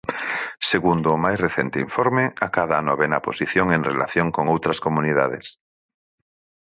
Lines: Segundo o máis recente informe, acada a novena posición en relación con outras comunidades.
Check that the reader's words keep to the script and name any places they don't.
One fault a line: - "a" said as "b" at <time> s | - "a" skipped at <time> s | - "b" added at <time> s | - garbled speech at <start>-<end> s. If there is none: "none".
none